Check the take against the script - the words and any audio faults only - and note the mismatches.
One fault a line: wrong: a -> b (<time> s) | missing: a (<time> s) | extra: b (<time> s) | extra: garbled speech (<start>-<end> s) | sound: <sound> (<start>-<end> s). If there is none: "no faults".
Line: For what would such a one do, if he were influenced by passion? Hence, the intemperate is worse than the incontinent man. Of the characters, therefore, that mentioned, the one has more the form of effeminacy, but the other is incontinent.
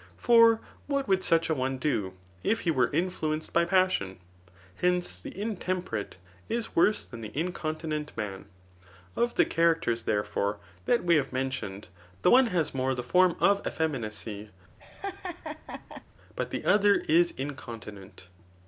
extra: we have (11.0 s)
sound: laugh (14.8-16.0 s)